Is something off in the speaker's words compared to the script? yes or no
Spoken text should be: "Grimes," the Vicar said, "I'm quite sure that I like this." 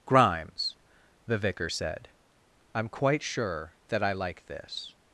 no